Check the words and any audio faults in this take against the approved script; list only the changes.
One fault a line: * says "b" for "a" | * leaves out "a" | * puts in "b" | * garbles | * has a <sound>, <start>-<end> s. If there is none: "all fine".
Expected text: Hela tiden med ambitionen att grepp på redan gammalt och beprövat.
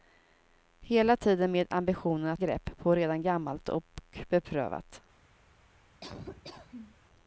* has a laugh, 6.0-7.0 s